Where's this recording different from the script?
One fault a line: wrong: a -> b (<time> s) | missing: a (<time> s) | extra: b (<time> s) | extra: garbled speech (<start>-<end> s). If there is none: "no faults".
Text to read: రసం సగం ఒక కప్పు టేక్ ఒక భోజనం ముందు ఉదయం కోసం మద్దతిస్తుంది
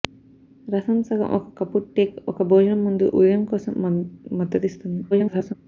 extra: garbled speech (5.1-5.5 s)